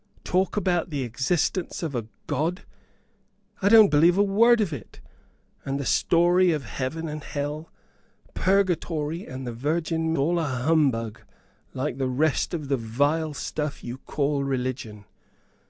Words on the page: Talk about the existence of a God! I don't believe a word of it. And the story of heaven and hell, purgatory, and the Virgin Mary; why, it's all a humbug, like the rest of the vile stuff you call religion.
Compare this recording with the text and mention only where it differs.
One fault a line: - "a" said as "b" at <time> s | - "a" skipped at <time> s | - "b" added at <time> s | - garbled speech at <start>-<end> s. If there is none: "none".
- "Mary why it's" skipped at 10.1 s